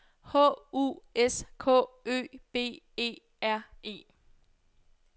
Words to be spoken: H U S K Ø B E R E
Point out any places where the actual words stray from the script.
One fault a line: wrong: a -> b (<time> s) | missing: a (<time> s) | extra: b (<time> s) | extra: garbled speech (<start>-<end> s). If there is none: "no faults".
no faults